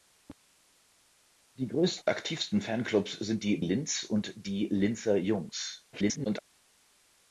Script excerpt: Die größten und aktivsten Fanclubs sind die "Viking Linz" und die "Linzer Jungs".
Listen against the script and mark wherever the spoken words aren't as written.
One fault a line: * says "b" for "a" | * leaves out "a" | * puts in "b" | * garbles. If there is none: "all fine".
* leaves out "und"
* leaves out "Viking"
* garbles